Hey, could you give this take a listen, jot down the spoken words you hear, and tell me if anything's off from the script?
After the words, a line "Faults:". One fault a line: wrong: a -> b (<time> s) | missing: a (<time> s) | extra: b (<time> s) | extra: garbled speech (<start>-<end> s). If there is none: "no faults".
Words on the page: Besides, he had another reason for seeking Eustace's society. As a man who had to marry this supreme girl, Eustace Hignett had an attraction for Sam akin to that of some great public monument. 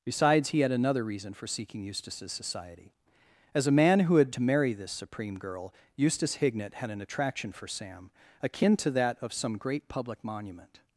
Besides, he had another reason for seeking Eustace's society. As a man who had to marry this supreme girl, Eustace Hignett had an attraction for Sam akin to that of some great public monument.
Faults:
no faults